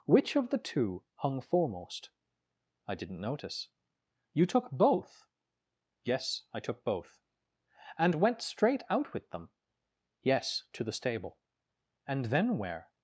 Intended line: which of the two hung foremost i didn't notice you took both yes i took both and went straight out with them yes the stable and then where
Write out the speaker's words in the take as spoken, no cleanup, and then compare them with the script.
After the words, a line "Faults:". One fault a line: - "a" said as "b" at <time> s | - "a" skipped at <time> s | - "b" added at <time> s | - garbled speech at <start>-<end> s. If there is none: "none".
which of the two hung foremost i didn't notice you took both yes i took both and went straight out with them yes to the stable and then where
Faults:
- "to" added at 10.7 s